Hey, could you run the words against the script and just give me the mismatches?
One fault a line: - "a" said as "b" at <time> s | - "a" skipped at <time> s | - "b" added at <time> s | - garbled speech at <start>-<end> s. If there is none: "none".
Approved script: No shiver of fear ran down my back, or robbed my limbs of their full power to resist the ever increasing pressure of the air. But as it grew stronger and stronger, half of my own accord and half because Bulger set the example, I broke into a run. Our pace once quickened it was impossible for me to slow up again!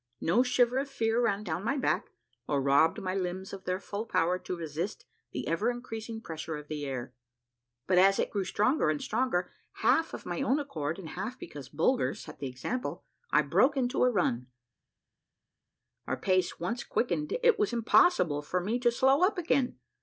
none